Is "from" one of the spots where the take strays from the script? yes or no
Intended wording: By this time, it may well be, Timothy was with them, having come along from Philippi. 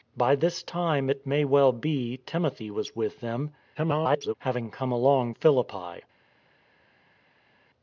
yes